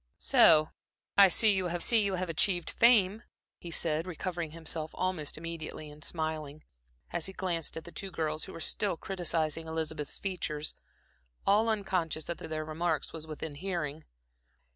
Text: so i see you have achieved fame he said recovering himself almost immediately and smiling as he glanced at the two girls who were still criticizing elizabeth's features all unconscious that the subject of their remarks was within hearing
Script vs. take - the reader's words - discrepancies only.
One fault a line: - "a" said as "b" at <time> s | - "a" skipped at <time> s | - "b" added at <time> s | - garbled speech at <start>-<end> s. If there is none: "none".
- "see you have" added at 1.8 s
- "subject" skipped at 12.4 s